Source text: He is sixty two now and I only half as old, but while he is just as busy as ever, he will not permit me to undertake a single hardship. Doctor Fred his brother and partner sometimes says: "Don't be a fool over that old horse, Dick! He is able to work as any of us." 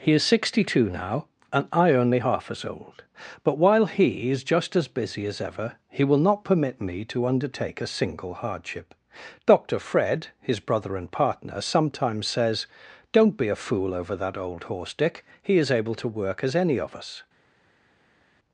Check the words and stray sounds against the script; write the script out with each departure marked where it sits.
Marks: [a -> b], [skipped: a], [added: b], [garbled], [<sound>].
He is sixty two now and I only half as old, but while he is just as busy as ever, he will not permit me to undertake a single hardship. Doctor Fred his brother and partner sometimes says: "Don't be a fool over that old horse, Dick! He is able to work as any of us."